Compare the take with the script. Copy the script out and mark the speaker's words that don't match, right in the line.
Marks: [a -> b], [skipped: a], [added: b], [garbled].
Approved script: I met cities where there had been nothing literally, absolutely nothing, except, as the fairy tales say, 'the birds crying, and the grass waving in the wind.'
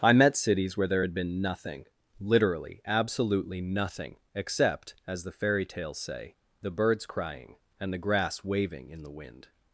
I met cities where there had been nothing literally, absolutely nothing, except, as the fairy tales say, 'the birds crying, and the grass waving in the wind.'